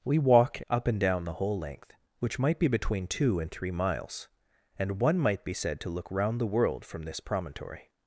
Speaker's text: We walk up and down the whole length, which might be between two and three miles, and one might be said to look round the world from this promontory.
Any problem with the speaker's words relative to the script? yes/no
no